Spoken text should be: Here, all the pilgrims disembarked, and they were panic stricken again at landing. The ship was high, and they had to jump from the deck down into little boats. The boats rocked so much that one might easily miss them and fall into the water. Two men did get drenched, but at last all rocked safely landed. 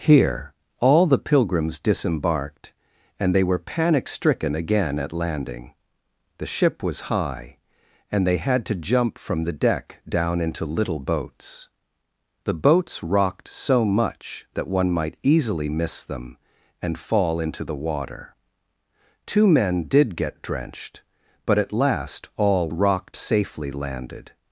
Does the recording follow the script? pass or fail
pass